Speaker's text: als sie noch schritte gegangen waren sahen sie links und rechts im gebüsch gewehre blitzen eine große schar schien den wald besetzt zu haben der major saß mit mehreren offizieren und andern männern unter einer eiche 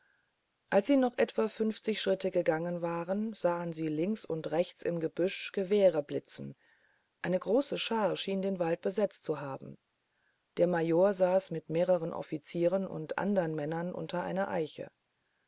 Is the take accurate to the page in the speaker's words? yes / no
no